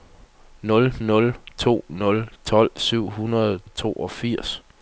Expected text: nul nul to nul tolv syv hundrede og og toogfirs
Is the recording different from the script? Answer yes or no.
no